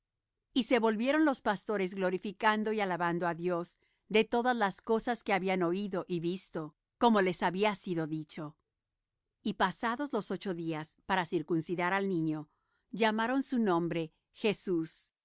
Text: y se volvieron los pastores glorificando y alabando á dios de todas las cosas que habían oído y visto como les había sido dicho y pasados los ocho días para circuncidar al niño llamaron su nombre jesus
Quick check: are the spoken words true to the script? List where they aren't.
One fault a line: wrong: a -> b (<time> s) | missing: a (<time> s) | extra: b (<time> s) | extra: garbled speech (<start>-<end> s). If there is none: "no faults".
no faults